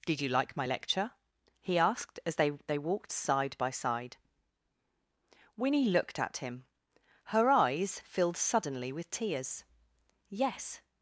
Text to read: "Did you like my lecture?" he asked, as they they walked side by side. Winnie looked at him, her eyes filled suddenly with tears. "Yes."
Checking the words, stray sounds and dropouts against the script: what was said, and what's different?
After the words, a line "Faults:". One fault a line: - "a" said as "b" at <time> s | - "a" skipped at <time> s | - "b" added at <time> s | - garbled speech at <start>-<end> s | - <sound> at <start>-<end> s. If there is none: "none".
"Did you like my lecture?" he asked, as they they walked side by side. Winnie looked at him, her eyes filled suddenly with tears. "Yes."
Faults:
none